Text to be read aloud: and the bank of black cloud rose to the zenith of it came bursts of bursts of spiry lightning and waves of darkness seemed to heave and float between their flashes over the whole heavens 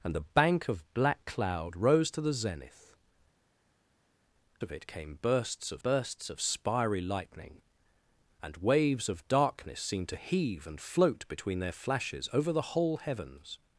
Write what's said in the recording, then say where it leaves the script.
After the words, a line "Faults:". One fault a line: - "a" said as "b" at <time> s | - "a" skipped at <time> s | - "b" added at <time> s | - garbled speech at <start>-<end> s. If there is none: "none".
and the bank of black cloud rose to the zenith of it came bursts of bursts of spiry lightning and waves of darkness seemed to heave and float between their flashes over the whole heavens
Faults:
none